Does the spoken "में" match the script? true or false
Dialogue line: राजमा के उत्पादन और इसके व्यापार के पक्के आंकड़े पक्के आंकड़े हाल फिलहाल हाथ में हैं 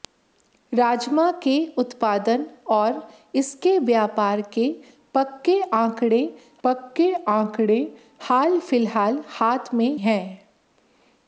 true